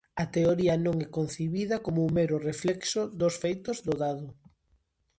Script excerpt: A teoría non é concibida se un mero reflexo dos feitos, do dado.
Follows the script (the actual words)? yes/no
no